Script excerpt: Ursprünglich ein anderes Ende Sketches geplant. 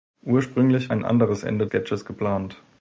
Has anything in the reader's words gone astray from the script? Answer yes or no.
no